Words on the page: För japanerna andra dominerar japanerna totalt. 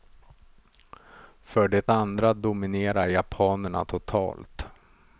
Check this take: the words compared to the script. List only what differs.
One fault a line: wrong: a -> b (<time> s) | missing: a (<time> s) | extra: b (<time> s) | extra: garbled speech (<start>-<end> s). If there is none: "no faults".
wrong: japanerna -> det (1.7 s)